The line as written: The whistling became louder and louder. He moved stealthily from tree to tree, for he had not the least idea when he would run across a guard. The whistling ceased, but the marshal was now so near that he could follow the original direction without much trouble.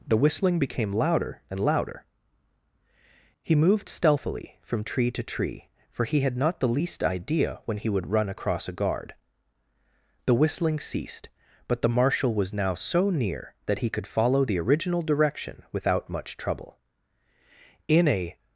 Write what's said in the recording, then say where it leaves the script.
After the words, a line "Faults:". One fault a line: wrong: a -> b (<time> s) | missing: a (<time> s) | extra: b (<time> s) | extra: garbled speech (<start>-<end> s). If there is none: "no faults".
The whistling became louder and louder. He moved stealthily from tree to tree, for he had not the least idea when he would run across a guard. The whistling ceased, but the marshal was now so near that he could follow the original direction without much trouble. In a
Faults:
extra: In a (17.9 s)